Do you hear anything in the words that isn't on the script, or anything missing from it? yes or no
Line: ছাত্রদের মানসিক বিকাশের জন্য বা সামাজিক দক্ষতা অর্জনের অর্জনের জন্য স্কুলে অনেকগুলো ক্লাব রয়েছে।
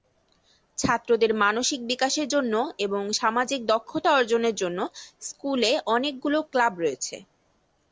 yes